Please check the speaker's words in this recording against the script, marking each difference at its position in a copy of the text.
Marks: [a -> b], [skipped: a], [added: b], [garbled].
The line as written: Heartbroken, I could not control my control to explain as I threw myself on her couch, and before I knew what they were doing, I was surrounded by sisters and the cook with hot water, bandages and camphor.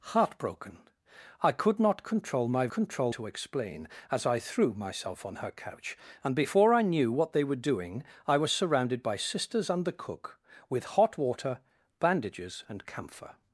Heartbroken, I could not control my control to explain as I threw myself on her couch, and before I knew what they were doing, I was surrounded by sisters and the cook with hot water, bandages and camphor.